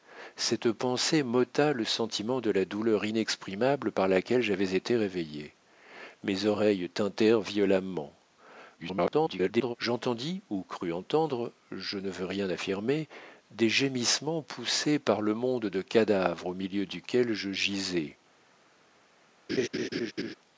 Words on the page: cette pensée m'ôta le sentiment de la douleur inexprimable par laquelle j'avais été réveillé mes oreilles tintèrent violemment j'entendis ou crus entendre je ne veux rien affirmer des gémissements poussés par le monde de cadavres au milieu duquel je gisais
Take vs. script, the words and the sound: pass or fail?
fail